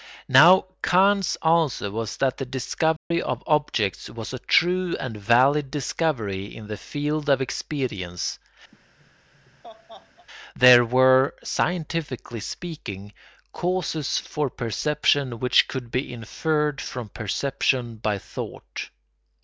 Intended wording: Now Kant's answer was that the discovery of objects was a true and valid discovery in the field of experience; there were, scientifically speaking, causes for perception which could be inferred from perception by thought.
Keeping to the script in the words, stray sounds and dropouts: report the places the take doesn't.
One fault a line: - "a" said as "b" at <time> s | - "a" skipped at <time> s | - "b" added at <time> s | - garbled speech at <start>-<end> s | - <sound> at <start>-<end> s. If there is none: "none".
- dropout at 3.0-3.1 s
- laugh at 8.7-10.3 s